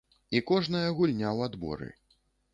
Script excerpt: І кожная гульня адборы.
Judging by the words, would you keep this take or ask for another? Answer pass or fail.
fail